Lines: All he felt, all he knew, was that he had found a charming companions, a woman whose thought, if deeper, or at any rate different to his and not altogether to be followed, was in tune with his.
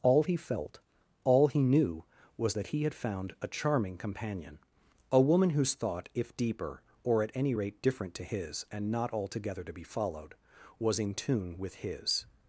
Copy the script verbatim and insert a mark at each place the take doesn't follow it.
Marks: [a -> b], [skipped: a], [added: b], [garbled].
All he felt, all he knew, was that he had found a charming [companions, -> companion] a woman whose thought, if deeper, or at any rate different to his and not altogether to be followed, was in tune with his.